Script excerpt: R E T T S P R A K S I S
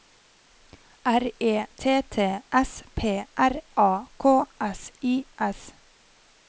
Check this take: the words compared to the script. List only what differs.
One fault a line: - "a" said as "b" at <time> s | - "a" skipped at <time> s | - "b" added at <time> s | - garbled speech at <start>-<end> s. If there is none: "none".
none